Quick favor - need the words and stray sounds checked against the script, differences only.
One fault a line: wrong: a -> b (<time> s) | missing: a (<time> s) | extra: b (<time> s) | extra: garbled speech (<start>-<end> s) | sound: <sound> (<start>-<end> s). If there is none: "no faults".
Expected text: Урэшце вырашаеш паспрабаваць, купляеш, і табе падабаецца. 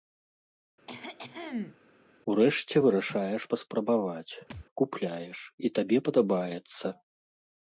sound: cough (0.9-1.8 s)
sound: thud (4.5-4.7 s)